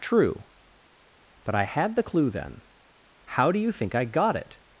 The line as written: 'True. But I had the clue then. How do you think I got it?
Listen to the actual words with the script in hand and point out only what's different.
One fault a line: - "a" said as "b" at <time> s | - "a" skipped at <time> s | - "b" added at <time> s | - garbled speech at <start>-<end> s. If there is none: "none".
none